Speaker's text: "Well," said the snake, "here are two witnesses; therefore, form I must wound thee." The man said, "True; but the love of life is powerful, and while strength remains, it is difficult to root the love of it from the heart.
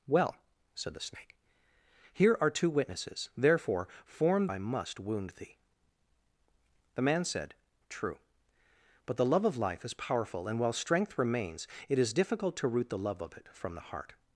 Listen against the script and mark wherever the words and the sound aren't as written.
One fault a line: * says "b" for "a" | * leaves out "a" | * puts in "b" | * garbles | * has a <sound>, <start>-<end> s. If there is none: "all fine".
all fine